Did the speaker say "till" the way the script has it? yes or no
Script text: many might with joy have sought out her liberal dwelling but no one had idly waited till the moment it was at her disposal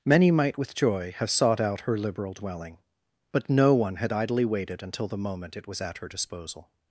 no